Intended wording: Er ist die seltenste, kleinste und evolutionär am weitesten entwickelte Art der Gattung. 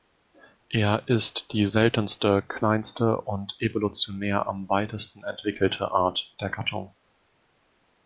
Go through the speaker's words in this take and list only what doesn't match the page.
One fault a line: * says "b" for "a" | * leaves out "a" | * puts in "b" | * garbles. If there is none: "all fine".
all fine